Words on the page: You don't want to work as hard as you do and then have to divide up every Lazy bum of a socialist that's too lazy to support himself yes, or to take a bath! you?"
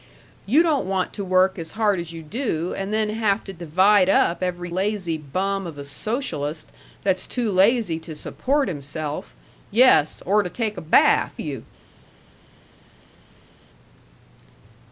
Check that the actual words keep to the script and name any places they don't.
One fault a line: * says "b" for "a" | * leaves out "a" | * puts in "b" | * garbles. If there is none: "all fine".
all fine